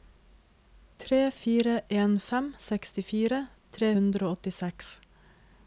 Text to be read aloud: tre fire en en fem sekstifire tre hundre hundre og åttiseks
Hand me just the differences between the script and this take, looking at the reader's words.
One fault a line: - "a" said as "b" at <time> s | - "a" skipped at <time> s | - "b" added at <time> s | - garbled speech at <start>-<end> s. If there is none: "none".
- "en" skipped at 2.2 s
- "hundre" skipped at 4.3 s